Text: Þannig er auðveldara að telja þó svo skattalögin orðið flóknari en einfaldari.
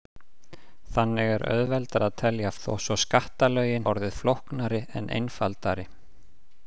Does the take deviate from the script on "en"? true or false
false